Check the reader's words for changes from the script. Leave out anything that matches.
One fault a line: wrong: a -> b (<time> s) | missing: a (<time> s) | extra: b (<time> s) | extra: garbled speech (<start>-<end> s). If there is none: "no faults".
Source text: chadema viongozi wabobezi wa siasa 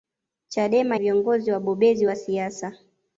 no faults